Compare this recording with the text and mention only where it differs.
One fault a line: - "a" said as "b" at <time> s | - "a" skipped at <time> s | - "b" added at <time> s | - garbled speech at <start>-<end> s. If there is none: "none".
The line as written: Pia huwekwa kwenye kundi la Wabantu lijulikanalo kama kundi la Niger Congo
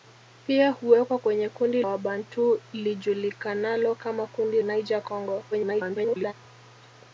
- "la" skipped at 1.8 s
- "la" skipped at 4.6 s
- garbled speech at 5.5-6.3 s